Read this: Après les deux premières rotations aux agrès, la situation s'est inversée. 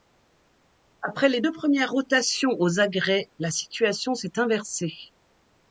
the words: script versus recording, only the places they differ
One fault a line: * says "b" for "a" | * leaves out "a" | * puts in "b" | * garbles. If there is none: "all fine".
all fine